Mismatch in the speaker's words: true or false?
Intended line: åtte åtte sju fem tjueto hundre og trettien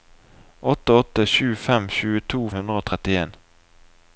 false